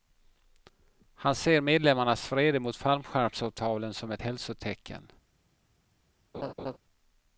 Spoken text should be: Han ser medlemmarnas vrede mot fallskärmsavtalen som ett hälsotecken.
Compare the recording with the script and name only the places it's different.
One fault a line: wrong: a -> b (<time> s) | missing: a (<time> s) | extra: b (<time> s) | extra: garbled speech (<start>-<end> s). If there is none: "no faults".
no faults